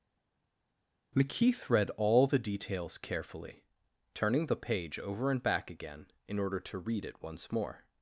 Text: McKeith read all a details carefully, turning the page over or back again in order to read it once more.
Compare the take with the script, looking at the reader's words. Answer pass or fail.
fail